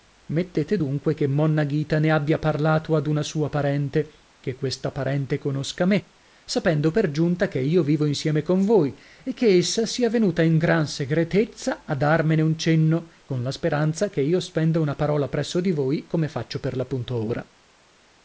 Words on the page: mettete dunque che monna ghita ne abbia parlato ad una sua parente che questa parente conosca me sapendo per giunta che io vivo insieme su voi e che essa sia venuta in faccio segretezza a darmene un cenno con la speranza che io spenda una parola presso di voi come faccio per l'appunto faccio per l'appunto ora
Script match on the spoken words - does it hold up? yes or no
no